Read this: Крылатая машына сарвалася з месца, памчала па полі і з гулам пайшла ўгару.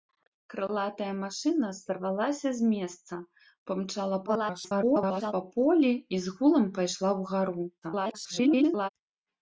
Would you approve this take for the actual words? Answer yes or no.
no